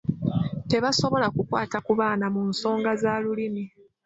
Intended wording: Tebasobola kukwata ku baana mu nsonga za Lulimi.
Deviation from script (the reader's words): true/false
false